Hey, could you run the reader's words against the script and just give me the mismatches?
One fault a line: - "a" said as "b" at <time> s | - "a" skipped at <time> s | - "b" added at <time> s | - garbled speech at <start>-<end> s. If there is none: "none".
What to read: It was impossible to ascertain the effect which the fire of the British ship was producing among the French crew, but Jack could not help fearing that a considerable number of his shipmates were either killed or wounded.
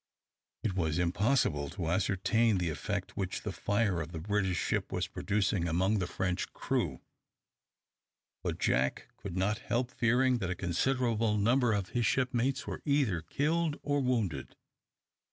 none